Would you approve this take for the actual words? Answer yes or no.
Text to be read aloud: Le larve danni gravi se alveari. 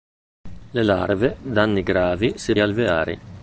yes